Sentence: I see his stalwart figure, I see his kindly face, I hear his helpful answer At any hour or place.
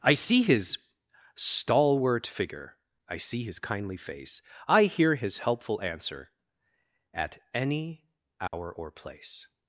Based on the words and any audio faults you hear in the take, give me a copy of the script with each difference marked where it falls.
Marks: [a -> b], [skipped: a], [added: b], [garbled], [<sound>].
I see his stalwart figure, I see his kindly face, I hear his helpful answer At any hour [dropout] or place.